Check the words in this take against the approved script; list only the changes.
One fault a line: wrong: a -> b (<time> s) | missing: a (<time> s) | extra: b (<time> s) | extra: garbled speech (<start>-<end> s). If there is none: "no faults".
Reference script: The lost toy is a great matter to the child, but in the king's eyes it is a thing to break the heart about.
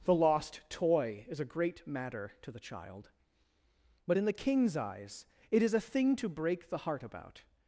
no faults